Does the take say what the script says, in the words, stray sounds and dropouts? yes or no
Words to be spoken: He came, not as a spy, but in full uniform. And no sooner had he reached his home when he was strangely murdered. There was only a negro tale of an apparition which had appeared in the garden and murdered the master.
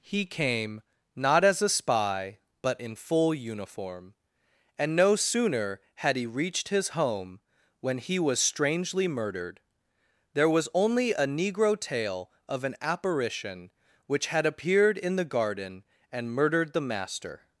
yes